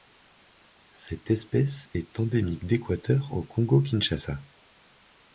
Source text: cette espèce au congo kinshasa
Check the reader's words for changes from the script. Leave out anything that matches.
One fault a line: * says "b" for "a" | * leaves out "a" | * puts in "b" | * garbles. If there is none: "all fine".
* puts in "est endémique d'équateur"